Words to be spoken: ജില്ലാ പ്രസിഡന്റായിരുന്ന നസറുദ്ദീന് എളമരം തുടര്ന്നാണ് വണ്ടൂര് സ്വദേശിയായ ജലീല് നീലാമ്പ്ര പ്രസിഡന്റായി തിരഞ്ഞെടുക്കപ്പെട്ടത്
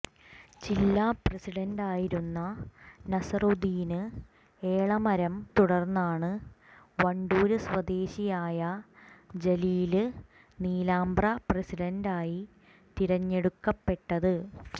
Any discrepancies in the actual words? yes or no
no